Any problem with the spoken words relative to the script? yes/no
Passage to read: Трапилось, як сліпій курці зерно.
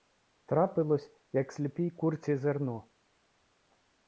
no